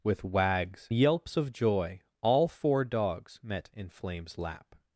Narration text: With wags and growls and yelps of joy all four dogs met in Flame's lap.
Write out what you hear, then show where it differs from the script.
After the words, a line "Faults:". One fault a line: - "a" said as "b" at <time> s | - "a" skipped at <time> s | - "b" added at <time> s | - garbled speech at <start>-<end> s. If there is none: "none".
With wags yelps of joy all four dogs met in Flame's lap.
Faults:
- "and growls and" skipped at 0.9 s